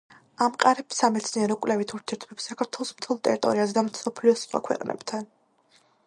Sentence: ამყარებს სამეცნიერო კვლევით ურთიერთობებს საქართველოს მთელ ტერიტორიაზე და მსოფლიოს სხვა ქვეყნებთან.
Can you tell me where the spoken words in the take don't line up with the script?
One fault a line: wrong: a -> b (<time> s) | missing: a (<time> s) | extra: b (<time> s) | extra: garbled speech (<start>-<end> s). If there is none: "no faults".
no faults